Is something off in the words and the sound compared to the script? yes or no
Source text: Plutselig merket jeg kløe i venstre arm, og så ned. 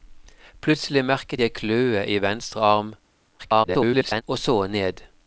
yes